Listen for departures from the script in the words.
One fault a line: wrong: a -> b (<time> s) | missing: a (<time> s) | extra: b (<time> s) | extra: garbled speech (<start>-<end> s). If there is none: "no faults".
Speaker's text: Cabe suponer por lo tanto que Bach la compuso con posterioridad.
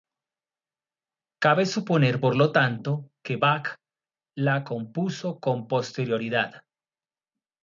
no faults